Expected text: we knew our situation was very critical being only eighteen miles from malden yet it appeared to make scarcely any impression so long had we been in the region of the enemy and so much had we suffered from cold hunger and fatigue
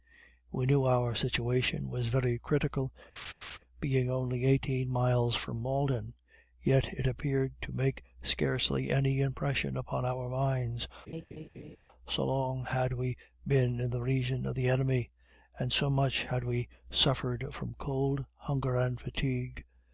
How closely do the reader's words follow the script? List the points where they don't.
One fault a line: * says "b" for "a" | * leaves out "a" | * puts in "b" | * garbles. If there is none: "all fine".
* puts in "upon our minds"